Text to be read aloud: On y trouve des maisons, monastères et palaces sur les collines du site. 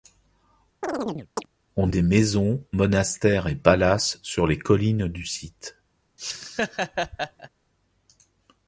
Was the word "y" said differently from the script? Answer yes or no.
yes